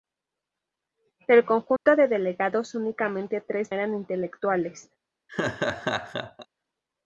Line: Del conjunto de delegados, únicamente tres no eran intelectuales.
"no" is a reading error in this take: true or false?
true